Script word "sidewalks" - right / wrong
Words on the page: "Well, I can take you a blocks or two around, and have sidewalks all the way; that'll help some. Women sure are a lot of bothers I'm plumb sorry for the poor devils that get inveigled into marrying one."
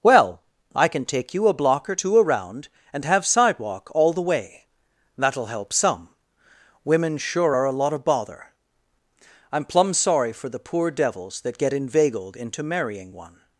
wrong